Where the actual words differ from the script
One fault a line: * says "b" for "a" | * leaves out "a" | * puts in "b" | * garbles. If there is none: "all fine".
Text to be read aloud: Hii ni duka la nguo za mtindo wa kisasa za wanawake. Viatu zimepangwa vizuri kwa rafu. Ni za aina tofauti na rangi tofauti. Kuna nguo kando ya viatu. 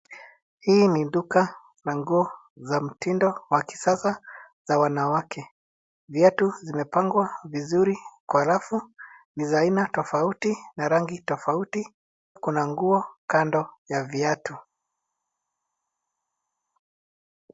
all fine